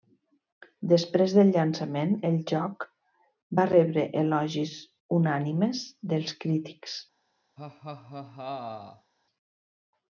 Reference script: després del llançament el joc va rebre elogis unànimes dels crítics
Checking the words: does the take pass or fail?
pass